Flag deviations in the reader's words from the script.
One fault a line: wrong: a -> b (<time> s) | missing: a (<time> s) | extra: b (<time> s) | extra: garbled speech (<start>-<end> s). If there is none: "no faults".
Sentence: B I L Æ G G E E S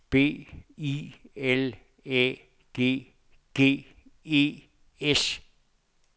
missing: E (4.6 s)